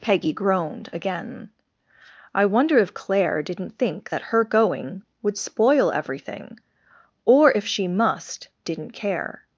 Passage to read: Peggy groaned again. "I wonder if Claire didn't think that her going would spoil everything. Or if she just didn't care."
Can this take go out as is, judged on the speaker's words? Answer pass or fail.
fail